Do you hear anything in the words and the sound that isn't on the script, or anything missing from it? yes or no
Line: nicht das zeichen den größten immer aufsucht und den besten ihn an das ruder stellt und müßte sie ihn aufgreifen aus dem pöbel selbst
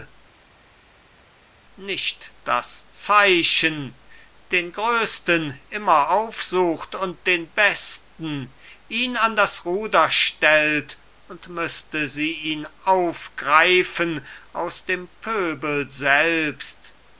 no